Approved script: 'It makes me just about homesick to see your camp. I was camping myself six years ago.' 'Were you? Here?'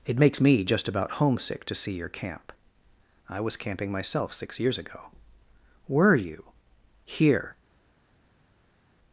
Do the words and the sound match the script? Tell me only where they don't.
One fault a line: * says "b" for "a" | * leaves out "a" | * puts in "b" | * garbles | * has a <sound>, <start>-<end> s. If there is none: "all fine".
all fine